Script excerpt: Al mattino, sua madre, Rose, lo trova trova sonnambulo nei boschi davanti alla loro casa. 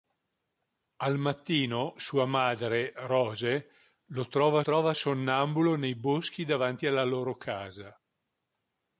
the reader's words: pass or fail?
pass